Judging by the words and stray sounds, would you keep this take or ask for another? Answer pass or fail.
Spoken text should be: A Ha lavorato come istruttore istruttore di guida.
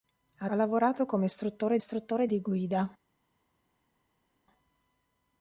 pass